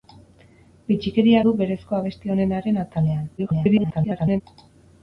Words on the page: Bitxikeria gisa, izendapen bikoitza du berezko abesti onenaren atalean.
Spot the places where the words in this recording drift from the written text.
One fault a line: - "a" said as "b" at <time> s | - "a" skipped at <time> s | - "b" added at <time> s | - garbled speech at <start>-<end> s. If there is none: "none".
- "gisa izendapen bikoitza" skipped at 1.4 s
- garbled speech at 3.4-4.4 s